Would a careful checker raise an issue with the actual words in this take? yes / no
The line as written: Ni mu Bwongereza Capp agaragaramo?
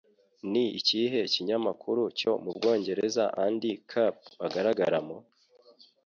yes